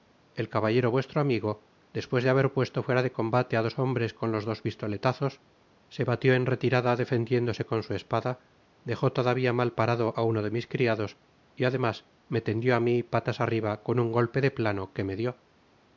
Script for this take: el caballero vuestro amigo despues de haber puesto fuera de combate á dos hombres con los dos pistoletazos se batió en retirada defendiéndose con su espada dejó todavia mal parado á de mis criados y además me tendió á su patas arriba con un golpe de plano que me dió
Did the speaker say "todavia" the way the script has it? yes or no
yes